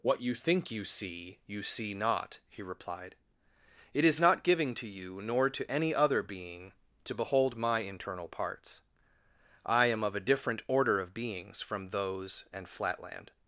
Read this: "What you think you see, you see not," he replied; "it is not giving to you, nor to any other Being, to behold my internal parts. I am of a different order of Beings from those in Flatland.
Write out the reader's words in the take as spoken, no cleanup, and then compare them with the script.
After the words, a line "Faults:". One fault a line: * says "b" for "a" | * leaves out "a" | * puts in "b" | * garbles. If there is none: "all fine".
"What you think you see, you see not," he replied; "it is not giving to you, nor to any other Being, to behold my internal parts. I am of a different order of Beings from those and Flatland.
Faults:
* says "and" for "in"